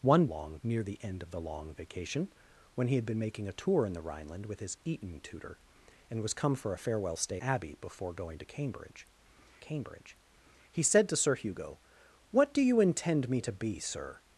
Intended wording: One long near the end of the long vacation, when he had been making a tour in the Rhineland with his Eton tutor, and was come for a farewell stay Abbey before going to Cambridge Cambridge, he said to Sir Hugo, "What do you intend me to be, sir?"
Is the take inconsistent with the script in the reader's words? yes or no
no